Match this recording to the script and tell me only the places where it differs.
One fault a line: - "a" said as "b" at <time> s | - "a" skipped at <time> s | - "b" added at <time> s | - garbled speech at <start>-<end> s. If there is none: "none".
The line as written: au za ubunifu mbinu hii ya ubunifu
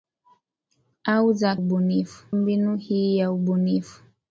none